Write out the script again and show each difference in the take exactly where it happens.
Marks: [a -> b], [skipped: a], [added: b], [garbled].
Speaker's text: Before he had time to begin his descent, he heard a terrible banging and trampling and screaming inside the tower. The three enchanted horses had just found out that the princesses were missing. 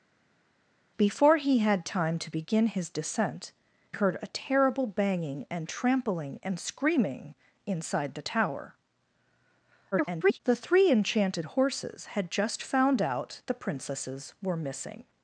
Before he had time to begin his descent, [skipped: he] heard a terrible banging and trampling and screaming inside the tower. [garbled] The three enchanted horses had just found out [skipped: that] the princesses were missing.